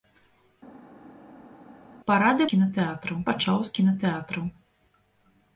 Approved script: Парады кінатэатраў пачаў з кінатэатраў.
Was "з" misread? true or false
false